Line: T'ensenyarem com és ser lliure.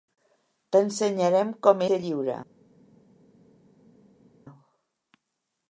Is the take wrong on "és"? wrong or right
wrong